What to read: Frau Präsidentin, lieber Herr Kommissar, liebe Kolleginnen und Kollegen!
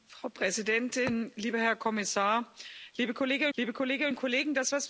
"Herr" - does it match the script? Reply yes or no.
yes